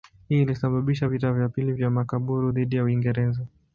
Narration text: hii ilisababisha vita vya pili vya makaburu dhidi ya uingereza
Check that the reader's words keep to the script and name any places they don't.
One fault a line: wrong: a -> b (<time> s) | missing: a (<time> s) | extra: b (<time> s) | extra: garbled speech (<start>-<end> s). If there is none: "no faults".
no faults